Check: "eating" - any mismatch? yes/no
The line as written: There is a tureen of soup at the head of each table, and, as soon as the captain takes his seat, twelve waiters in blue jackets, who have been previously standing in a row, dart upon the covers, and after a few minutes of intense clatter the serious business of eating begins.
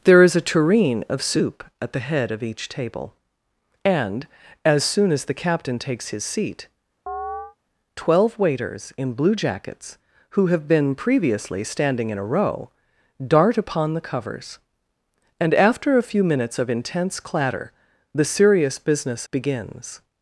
yes